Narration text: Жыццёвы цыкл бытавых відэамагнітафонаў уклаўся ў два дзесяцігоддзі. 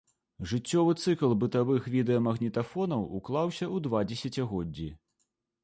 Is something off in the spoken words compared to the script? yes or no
no